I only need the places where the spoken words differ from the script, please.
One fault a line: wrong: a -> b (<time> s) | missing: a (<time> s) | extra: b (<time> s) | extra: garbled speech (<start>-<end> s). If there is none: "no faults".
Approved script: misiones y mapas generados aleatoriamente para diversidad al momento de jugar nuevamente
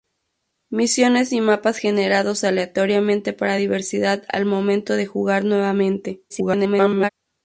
extra: garbled speech (6.3-7.1 s)